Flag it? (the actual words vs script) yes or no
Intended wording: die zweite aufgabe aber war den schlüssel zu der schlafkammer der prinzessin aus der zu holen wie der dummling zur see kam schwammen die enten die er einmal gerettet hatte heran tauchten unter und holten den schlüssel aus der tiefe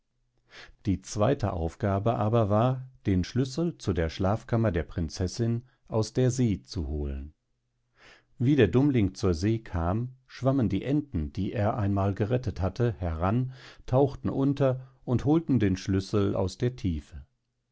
yes